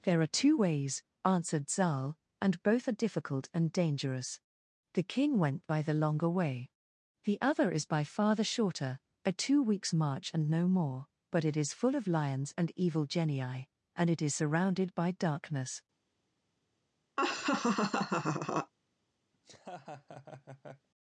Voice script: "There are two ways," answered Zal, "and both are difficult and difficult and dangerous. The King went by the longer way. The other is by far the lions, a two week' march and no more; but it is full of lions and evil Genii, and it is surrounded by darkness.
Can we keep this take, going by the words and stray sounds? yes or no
no